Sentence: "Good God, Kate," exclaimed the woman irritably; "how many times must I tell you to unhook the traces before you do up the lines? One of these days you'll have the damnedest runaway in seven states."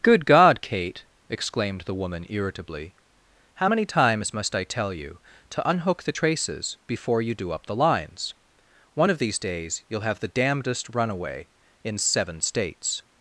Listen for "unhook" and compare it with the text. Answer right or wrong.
right